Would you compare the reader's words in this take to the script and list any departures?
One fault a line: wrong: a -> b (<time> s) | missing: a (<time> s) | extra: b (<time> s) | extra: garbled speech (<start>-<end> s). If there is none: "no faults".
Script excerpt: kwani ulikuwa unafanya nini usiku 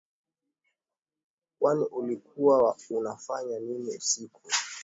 no faults